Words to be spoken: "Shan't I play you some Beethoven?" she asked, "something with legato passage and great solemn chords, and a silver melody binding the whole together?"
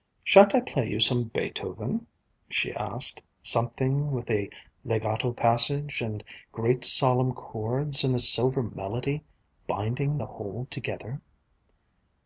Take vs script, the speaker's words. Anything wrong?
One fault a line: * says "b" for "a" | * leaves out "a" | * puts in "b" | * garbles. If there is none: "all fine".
* puts in "a"